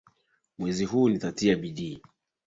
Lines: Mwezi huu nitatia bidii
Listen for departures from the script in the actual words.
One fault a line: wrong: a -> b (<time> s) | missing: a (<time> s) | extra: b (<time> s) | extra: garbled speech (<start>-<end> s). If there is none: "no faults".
no faults